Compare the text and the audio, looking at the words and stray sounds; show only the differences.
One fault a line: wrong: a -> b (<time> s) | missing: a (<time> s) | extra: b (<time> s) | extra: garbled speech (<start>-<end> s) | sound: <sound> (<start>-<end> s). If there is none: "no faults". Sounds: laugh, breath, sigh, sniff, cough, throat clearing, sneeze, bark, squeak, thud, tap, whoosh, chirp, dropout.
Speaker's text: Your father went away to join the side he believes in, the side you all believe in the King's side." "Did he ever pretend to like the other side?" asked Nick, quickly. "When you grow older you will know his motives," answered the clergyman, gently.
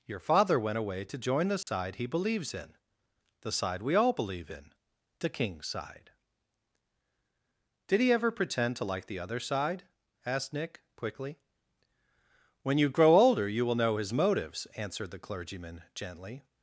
sound: dropout (1.6-1.7 s)
wrong: you -> we (3.8 s)